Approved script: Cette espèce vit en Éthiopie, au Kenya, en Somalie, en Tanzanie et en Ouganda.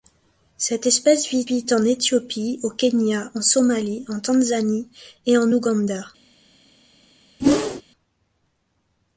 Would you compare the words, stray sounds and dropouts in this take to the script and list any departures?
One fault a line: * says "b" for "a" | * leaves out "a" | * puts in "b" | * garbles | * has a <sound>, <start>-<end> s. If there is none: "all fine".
* puts in "vit"
* has a whoosh, 7.4-7.8 s